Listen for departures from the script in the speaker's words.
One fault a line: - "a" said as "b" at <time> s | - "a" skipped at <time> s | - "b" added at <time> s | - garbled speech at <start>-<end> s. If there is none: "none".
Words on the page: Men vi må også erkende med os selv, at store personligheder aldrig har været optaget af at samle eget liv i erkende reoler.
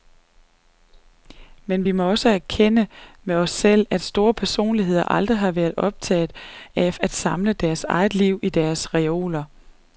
- "deres" added at 7.5 s
- "erkende" said as "deres" at 8.5 s